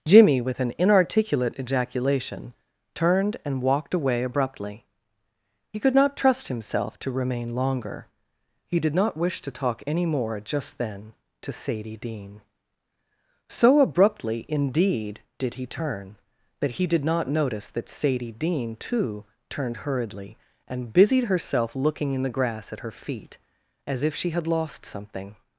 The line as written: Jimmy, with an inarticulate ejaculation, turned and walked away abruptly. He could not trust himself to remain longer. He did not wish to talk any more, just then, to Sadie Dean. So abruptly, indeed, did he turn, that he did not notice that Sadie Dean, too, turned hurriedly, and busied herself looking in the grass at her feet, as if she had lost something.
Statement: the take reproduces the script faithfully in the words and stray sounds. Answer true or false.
true